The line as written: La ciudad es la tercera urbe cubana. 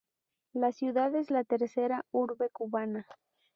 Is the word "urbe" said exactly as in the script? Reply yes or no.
yes